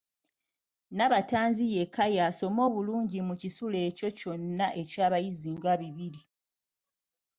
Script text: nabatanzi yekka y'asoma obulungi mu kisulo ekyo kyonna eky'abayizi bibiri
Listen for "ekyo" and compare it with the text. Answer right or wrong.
right